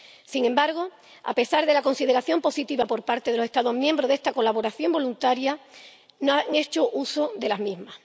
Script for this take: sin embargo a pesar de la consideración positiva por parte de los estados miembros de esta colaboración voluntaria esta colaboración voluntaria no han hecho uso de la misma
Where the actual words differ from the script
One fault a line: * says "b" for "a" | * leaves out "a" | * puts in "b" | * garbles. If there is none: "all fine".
* leaves out "esta colaboración voluntaria"